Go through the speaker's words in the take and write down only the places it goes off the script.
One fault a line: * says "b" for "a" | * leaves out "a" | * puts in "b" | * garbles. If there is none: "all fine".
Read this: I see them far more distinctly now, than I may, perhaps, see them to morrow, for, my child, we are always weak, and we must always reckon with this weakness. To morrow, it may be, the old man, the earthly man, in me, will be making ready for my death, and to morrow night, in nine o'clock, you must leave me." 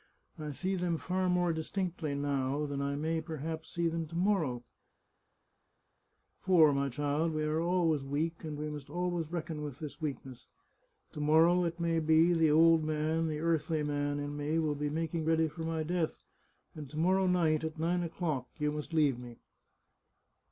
* says "at" for "in"